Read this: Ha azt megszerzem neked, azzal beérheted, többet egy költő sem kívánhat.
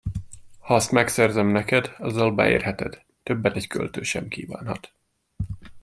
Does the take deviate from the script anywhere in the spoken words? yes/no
no